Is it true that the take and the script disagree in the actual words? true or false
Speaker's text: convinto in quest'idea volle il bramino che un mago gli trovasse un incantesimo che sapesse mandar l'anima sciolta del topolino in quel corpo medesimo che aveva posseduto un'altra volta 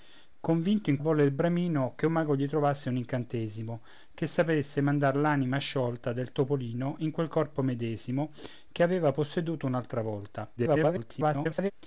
true